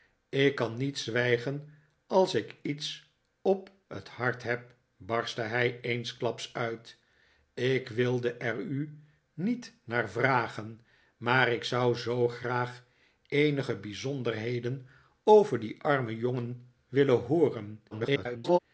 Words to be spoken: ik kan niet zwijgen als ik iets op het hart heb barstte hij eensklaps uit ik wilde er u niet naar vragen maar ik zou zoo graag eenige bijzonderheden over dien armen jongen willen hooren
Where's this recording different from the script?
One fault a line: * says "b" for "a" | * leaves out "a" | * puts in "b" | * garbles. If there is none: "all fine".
* garbles